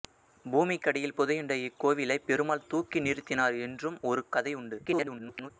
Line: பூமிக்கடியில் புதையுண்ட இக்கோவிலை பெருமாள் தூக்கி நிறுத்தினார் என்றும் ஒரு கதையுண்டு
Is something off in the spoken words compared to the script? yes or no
yes